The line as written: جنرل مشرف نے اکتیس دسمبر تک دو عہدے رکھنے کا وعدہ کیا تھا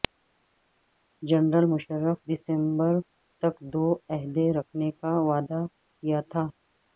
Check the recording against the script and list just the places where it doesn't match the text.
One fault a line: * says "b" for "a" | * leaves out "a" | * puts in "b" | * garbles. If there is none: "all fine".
* leaves out "نے اکتیس"